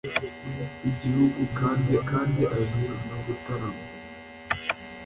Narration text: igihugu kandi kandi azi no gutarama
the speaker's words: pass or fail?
pass